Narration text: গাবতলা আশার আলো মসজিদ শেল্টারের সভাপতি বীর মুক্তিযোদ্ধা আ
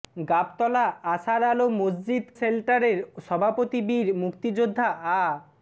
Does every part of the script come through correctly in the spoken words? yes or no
yes